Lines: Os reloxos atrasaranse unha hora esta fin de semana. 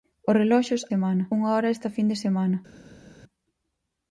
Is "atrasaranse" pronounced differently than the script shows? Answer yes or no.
yes